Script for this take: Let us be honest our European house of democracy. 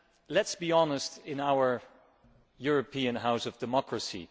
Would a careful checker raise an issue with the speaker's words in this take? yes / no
yes